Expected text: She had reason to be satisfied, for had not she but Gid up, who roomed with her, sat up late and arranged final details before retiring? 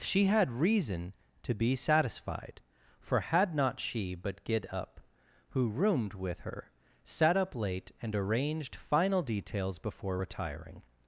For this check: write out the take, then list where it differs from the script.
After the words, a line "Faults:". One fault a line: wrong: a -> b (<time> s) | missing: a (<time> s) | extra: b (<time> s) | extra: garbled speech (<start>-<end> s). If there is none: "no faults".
She had reason to be satisfied, for had not she but Gid up, who roomed with her, sat up late and arranged final details before retiring?
Faults:
no faults